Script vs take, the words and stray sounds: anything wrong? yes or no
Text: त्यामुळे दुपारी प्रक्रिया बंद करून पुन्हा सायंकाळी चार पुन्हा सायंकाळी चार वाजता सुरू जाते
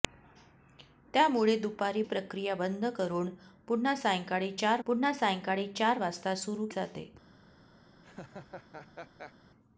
yes